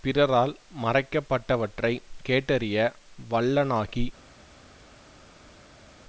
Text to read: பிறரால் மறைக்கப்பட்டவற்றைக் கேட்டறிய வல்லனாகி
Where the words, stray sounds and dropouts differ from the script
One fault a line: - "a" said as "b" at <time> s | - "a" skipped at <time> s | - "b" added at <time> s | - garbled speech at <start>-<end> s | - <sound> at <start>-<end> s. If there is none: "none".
none